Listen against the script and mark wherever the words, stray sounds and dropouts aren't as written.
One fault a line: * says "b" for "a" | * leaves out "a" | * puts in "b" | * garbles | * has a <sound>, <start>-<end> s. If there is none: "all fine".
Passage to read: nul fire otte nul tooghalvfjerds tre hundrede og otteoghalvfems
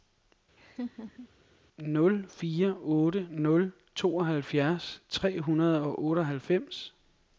* has a laugh, 0.6-1.3 s